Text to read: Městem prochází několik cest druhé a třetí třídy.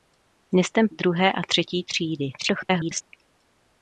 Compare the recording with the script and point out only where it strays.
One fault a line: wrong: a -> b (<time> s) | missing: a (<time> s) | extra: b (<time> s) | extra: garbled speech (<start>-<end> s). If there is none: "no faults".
missing: prochází několik cest (0.9 s)
extra: garbled speech (2.4-3.0 s)